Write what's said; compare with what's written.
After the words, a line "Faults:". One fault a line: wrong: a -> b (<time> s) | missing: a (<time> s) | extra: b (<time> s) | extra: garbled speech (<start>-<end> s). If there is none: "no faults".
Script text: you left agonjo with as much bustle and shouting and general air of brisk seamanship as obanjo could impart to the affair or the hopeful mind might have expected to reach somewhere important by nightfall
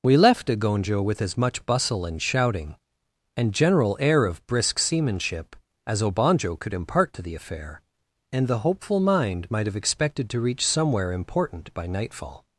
we left agonjo with as much bustle and shouting and general air of brisk seamanship as obanjo could impart to the affair and the hopeful mind might have expected to reach somewhere important by nightfall
Faults:
wrong: you -> we (0.0 s)
wrong: or -> and (8.3 s)